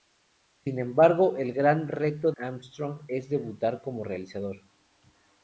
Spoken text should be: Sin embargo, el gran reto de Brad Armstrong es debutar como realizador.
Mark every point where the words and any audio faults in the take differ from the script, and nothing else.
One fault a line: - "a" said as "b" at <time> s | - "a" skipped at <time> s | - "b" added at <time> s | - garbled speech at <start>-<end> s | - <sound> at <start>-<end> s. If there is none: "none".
- "de Brad" skipped at 2.3 s